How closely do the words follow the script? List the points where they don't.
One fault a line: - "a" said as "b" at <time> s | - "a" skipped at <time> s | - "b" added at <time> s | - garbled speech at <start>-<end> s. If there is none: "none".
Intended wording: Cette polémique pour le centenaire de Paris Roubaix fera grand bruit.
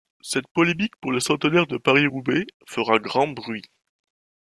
none